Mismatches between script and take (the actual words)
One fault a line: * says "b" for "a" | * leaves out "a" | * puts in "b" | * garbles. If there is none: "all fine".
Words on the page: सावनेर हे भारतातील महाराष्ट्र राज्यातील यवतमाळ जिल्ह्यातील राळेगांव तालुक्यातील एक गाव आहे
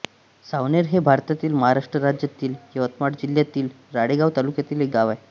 all fine